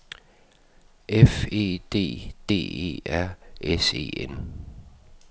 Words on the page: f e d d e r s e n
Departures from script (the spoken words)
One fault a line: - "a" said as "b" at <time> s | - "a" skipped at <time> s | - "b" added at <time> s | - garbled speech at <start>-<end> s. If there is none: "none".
none